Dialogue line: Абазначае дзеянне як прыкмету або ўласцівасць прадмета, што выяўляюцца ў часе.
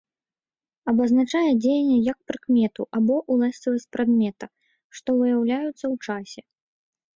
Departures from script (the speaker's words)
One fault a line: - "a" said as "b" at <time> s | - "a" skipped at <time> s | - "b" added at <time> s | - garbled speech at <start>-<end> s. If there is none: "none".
none